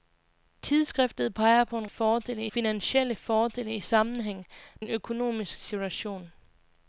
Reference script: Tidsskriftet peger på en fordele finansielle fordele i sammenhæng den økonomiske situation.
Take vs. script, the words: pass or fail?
pass